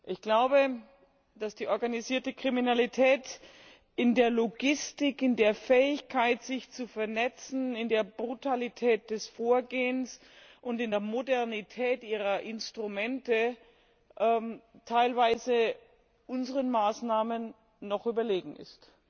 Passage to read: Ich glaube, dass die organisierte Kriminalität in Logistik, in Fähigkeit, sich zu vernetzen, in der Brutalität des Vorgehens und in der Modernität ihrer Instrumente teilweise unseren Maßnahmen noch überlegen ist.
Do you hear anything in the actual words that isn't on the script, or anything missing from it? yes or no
yes